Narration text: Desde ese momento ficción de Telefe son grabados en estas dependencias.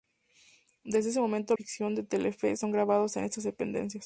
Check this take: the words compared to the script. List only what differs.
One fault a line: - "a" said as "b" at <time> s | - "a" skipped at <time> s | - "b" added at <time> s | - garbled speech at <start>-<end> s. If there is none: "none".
none